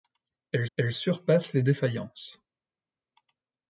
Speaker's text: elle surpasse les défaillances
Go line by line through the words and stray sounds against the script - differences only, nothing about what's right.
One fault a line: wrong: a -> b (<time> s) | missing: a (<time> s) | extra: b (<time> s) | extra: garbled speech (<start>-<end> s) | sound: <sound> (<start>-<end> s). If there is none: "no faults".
extra: elle (0.8 s)